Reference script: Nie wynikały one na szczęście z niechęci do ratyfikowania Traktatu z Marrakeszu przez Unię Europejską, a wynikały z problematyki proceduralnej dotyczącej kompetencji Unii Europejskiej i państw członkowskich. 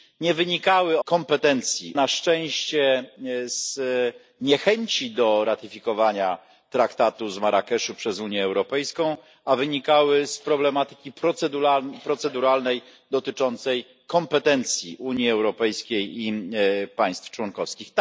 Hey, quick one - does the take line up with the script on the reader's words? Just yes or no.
no